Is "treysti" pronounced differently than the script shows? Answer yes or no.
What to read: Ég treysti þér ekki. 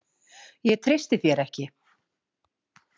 no